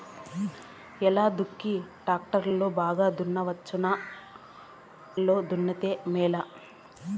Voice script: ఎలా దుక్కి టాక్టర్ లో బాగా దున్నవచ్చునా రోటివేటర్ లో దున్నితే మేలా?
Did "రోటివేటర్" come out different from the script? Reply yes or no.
yes